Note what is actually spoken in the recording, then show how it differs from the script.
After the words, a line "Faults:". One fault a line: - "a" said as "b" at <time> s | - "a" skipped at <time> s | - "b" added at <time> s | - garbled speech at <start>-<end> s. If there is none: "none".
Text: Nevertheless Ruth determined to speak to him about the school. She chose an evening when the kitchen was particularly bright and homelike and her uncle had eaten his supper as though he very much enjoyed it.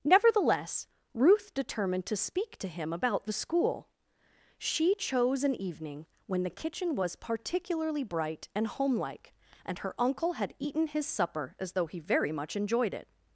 Nevertheless Ruth determined to speak to him about the school. She chose an evening when the kitchen was particularly bright and homelike and her uncle had eaten his supper as though he very much enjoyed it.
Faults:
none